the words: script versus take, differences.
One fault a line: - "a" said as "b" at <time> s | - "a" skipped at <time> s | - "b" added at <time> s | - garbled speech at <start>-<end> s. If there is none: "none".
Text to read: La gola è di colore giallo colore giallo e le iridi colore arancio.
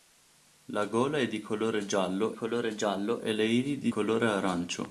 none